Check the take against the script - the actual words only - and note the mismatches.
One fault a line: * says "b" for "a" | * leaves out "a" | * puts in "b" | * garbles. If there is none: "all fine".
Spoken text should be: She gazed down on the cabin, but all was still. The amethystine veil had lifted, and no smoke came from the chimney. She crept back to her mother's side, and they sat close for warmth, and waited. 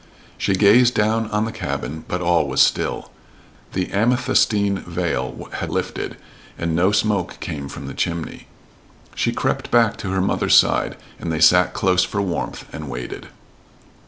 all fine